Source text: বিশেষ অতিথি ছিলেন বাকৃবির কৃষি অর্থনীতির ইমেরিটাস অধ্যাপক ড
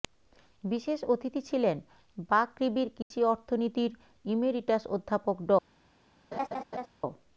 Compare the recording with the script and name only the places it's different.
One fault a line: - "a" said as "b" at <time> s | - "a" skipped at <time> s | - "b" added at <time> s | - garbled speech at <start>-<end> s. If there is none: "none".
none